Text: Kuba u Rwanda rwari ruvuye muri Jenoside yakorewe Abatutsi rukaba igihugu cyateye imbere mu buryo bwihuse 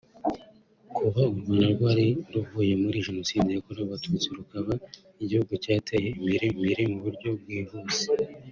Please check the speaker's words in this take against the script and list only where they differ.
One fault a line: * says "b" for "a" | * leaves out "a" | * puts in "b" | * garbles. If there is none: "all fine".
* puts in "imbere"